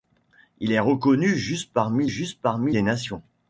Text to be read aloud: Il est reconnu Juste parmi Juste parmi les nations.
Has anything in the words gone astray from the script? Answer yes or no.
no